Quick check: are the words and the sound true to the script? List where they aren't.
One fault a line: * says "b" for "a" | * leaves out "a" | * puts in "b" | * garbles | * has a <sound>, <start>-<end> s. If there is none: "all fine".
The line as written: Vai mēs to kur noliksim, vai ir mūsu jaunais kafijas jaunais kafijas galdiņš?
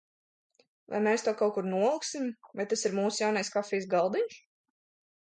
* puts in "kaut"
* puts in "tas"
* leaves out "jaunais kafijas"